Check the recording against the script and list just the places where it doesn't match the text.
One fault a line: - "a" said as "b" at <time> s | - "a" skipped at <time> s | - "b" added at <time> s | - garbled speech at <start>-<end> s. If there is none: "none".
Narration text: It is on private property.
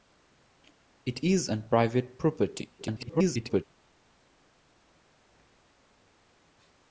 - garbled speech at 2.8-3.6 s